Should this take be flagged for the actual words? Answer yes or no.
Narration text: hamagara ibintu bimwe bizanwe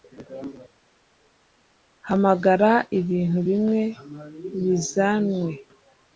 no